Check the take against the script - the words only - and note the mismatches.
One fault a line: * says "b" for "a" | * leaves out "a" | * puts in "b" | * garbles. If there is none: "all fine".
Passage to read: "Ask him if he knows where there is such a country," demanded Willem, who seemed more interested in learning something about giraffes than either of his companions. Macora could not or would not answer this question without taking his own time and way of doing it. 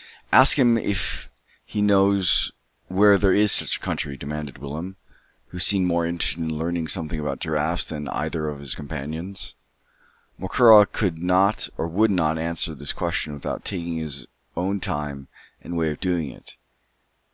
all fine